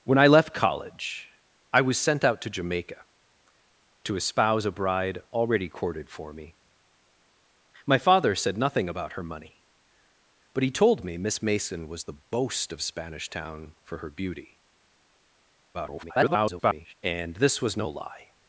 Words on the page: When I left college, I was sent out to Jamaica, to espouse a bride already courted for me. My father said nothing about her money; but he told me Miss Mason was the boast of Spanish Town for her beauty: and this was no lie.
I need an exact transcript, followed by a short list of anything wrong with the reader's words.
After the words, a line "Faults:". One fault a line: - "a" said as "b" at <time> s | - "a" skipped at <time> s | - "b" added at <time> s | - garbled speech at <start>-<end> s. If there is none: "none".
When I left college, I was sent out to Jamaica, to espouse a bride already courted for me. My father said nothing about her money; but he told me Miss Mason was the boast of Spanish Town for her beauty: [garbled] and this was no lie.
Faults:
- garbled speech at 15.7-16.9 s